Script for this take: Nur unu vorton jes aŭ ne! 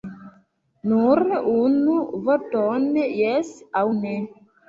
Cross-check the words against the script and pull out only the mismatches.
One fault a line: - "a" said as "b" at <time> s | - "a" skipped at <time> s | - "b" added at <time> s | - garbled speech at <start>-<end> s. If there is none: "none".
none